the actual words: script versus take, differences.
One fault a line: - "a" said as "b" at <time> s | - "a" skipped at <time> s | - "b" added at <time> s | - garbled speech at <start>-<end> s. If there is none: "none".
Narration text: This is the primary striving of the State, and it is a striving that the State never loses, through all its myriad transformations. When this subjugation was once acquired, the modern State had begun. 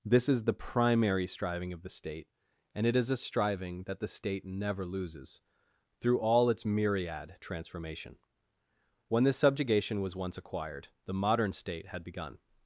- "transformations" said as "transformation" at 7.4 s